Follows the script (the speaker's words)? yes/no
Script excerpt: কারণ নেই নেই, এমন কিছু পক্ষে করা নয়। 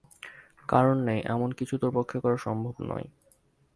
no